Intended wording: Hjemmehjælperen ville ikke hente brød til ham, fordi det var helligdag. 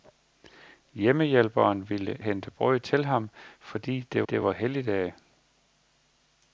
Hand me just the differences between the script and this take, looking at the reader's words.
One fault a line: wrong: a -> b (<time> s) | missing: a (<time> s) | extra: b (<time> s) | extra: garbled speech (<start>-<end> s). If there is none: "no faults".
missing: ikke (2.2 s)
extra: det (4.3 s)